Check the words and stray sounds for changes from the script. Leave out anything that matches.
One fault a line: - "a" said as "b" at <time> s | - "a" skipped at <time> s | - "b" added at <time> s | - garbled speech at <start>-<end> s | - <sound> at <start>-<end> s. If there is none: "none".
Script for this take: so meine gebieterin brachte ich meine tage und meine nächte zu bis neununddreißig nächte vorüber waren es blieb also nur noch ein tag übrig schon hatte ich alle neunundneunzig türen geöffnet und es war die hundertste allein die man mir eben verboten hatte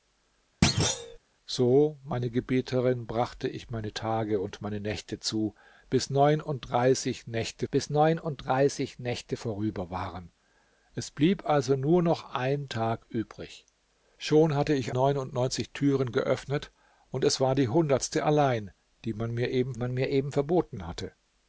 - thud at 0.6-1.2 s
- "bis neununddreißig nächte" added at 7.7 s
- "alle" skipped at 14.9 s
- "man mir eben" added at 19.7 s